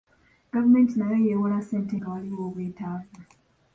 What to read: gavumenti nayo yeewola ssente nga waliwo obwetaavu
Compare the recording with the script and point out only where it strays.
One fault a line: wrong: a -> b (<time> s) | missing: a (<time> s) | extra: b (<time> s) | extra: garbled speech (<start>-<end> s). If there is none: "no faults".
no faults